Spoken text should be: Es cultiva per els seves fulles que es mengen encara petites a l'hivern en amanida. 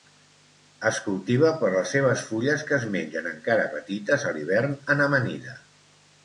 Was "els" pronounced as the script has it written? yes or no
no